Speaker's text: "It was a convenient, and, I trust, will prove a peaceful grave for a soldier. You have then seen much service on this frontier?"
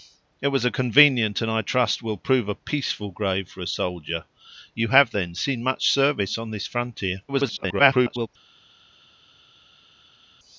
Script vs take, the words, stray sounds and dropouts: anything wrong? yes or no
yes